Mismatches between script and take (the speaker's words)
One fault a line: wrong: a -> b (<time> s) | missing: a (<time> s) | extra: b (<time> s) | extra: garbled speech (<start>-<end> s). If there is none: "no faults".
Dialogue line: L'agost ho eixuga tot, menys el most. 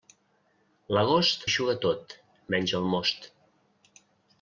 missing: ho (1.4 s)